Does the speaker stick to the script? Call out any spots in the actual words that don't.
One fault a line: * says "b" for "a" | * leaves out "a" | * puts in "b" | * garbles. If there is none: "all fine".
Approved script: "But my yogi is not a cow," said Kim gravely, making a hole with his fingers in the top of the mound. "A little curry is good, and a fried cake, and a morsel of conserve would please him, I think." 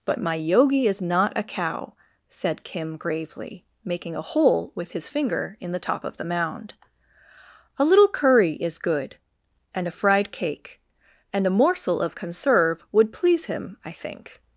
* says "finger" for "fingers"